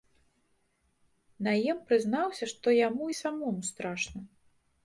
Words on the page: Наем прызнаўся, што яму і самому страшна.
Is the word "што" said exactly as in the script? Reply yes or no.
yes